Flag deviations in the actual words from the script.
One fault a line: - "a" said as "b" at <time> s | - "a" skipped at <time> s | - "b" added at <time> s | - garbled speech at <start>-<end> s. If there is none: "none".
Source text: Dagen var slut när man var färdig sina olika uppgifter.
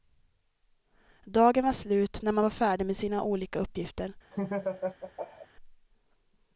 - "med" added at 2.9 s